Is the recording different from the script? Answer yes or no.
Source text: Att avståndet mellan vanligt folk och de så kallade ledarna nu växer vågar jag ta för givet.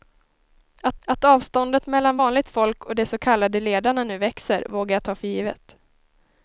yes